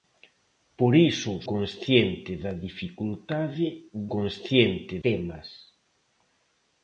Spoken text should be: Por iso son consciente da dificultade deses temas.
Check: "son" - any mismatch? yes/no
yes